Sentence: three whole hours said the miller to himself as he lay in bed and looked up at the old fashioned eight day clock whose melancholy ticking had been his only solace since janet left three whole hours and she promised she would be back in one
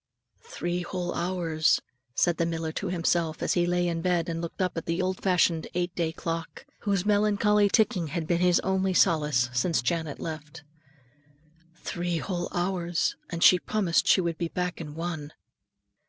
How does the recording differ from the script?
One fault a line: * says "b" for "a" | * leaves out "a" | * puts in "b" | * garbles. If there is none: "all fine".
all fine